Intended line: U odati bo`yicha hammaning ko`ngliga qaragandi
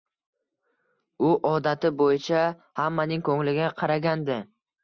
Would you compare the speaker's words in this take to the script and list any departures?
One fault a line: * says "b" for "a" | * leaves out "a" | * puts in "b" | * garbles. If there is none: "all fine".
all fine